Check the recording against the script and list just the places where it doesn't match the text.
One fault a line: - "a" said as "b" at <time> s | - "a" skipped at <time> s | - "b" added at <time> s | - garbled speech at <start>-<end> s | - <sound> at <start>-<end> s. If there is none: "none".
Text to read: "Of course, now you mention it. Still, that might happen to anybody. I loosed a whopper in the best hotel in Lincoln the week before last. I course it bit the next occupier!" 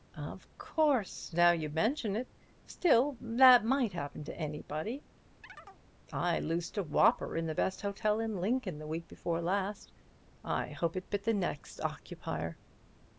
- chirp at 5.4-5.8 s
- "course" said as "hope" at 10.7 s